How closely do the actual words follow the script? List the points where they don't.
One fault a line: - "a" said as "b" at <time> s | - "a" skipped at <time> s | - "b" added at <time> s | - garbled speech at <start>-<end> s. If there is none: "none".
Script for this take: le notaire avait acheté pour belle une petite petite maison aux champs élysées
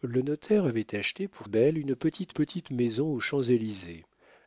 none